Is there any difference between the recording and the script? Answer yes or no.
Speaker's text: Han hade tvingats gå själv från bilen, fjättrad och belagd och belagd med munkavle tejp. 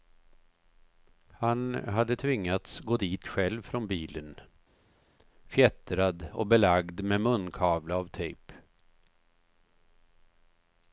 yes